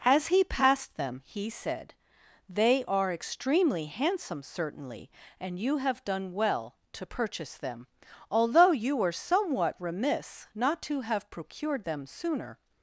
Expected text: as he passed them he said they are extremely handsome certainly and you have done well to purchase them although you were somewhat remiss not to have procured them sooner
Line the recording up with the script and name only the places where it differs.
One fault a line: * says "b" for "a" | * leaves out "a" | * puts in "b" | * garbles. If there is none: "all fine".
all fine